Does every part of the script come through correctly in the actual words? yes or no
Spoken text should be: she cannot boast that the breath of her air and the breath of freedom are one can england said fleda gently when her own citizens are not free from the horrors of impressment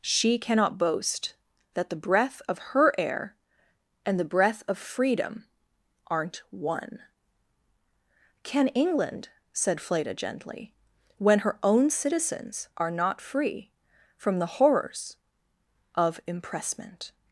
no